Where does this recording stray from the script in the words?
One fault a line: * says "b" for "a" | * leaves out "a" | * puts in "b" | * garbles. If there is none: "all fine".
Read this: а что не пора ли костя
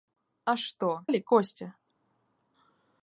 * leaves out "не пора"